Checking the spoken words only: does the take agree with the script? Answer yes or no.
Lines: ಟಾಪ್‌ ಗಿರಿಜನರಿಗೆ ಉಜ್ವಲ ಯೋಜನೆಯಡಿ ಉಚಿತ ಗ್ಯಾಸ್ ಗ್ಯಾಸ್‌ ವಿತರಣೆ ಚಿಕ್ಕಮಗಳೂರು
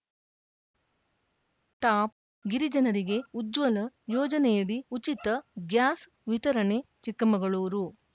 no